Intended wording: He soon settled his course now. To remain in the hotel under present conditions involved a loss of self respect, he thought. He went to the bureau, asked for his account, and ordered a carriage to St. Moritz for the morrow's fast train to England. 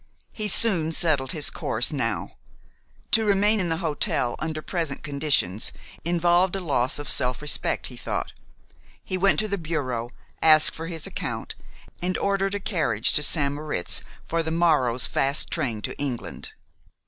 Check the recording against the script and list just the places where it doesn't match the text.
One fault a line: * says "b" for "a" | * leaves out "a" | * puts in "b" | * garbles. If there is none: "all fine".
all fine